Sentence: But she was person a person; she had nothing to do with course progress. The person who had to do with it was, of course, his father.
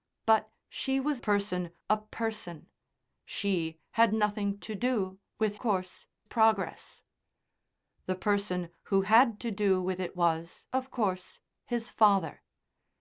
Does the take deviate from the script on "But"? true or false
false